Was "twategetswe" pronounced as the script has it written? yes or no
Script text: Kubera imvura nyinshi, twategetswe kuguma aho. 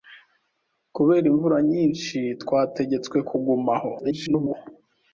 yes